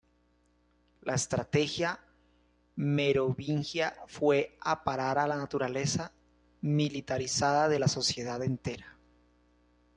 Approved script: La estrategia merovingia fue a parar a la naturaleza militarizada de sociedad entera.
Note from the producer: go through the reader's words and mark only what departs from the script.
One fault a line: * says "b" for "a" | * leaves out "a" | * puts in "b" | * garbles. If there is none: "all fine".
* puts in "la"